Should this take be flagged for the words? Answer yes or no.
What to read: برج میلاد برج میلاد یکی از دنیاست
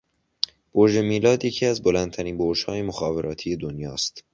yes